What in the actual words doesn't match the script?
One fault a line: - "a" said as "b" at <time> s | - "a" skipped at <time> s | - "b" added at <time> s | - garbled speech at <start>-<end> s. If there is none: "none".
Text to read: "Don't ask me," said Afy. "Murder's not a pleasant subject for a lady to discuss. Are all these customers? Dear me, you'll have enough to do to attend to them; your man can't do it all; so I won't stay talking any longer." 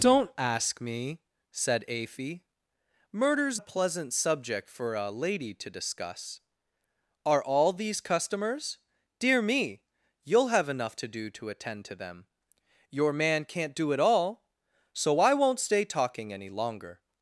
- "not" skipped at 3.6 s